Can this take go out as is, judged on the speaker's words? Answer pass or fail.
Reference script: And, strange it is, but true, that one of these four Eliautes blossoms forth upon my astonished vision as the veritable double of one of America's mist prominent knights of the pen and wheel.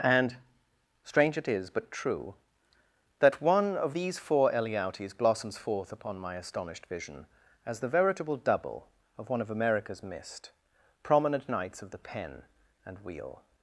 pass